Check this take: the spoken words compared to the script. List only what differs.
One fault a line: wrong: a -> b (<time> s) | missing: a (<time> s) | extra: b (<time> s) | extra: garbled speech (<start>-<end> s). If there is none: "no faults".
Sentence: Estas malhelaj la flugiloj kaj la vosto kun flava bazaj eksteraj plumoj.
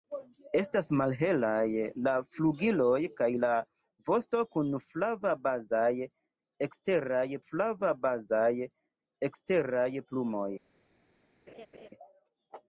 extra: flava bazaj eksteraj (7.4 s)